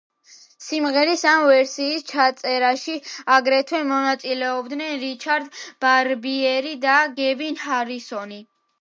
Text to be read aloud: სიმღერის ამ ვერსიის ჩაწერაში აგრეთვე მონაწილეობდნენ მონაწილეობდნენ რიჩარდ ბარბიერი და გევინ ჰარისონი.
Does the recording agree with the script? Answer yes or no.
no